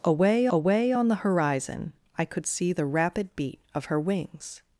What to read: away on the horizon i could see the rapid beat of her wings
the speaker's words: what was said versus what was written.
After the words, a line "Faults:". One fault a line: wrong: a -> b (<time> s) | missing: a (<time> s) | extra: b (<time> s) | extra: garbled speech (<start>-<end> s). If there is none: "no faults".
away away on the horizon i could see the rapid beat of her wings
Faults:
extra: away (0.5 s)